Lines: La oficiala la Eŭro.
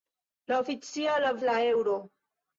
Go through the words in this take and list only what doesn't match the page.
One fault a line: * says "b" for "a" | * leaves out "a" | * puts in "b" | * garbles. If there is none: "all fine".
all fine